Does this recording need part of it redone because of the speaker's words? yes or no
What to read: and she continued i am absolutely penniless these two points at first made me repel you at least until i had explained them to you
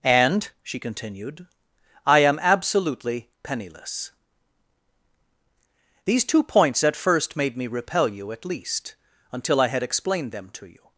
no